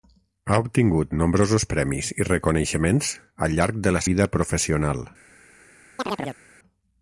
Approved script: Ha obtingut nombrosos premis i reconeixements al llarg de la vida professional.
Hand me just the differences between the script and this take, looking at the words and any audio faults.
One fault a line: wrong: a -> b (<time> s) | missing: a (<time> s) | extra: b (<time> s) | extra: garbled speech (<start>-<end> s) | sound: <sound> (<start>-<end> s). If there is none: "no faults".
sound: chirp (6.0-6.4 s)